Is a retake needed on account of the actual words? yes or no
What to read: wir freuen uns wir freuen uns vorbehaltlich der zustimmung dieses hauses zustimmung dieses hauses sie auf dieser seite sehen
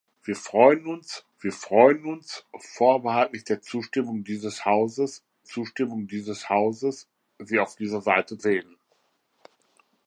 no